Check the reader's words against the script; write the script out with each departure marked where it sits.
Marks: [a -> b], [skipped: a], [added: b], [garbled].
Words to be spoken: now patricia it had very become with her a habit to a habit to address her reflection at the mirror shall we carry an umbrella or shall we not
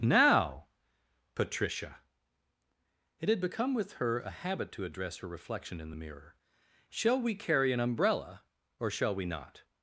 now patricia it had [skipped: very] become with her a habit to [skipped: a habit to] address her reflection [at -> in] the mirror shall we carry an umbrella or shall we not